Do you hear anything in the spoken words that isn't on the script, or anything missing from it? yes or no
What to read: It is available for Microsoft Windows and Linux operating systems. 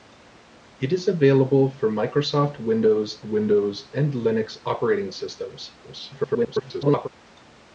yes